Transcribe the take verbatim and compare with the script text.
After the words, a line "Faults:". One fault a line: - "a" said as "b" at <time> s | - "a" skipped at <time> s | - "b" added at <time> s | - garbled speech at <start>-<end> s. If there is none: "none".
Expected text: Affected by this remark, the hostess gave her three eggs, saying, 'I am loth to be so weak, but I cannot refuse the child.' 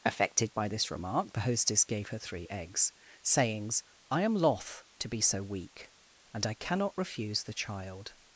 Affected by this remark, the hostess gave her three eggs, sayings, 'I am loth to be so weak, and I cannot refuse the child.'
Faults:
- "saying" said as "sayings" at 3.2 s
- "but" said as "and" at 6.3 s